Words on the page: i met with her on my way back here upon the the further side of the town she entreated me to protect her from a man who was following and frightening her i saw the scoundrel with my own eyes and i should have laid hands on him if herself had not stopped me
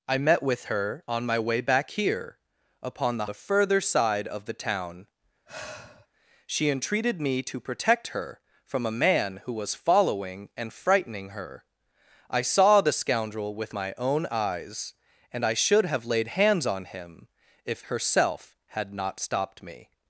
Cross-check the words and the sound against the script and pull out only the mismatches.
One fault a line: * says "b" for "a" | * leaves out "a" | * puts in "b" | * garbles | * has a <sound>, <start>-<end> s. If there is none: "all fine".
* has a sigh, 5.5-6.1 s